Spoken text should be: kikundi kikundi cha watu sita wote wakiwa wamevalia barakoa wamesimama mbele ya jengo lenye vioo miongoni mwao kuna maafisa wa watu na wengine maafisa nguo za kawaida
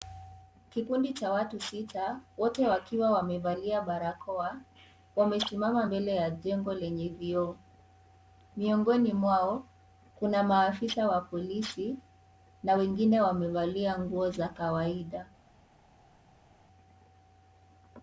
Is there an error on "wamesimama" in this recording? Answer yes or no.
no